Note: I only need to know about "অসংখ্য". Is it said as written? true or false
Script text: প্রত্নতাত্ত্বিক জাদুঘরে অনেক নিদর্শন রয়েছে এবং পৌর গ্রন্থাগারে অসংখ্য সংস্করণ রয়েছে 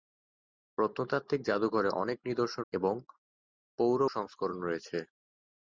false